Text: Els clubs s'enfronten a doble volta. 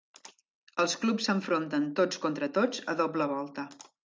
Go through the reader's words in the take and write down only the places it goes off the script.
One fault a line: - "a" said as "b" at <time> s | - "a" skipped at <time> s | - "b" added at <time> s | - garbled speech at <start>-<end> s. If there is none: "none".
- "tots contra tots" added at 2.0 s